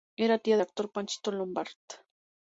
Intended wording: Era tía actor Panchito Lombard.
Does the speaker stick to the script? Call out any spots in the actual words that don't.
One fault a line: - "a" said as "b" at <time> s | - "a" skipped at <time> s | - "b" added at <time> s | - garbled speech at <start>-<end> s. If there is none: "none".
none